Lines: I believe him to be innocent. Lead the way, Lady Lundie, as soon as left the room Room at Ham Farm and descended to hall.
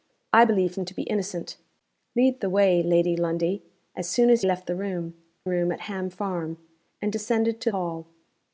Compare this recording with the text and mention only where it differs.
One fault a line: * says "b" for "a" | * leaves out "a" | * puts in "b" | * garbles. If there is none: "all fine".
all fine